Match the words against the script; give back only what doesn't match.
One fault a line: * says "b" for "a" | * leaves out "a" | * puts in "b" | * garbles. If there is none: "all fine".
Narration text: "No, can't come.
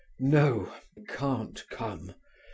all fine